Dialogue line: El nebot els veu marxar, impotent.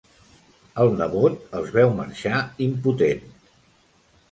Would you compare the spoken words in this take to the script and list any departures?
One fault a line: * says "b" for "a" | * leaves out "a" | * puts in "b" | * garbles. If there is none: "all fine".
all fine